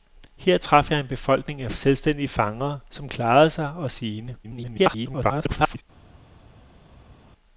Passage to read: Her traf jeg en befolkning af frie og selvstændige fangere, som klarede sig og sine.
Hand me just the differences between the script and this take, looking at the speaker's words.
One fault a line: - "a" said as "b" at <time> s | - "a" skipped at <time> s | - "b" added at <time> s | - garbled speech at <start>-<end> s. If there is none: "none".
- "frie" skipped at 1.7 s
- garbled speech at 4.4-5.8 s